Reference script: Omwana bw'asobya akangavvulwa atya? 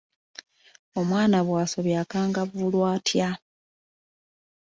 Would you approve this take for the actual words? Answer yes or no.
yes